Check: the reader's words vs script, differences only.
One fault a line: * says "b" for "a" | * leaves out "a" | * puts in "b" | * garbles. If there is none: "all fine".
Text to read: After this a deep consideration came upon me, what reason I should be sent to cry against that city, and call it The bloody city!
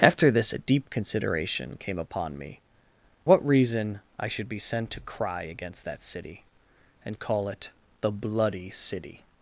all fine